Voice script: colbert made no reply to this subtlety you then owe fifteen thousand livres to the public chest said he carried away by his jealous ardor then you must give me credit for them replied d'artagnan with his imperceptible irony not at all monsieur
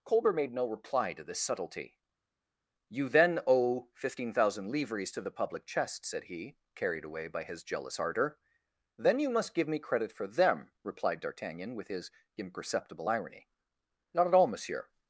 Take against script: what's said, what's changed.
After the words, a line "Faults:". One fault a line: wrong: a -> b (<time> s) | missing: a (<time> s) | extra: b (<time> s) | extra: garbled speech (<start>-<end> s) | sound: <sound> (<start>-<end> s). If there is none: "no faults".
colbert made no reply to this subtlety you then owe fifteen thousand livres to the public chest said he carried away by his jealous ardor then you must give me credit for them replied d'artagnan with his imperceptible irony not at all monsieur
Faults:
no faults